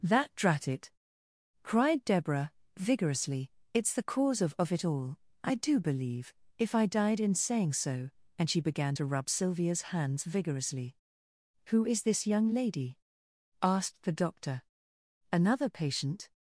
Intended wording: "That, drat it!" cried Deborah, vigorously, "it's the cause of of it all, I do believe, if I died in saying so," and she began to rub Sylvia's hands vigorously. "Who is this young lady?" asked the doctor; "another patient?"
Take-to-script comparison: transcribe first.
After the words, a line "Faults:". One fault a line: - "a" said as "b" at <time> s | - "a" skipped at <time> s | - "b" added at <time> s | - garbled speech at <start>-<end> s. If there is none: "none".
"That, drat it!" cried Deborah, vigorously, "it's the cause of of it all, I do believe, if I died in saying so," and she began to rub Sylvia's hands vigorously. "Who is this young lady?" asked the doctor; "another patient?"
Faults:
none